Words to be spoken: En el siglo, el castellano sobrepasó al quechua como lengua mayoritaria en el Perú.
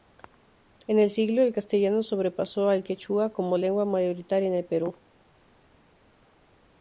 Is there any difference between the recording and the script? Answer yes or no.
no